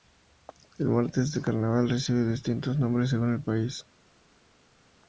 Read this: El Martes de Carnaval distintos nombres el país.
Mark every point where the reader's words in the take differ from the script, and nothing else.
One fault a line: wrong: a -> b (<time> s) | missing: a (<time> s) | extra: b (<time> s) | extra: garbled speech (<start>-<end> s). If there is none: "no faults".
extra: recibe (1.9 s)
extra: según (3.1 s)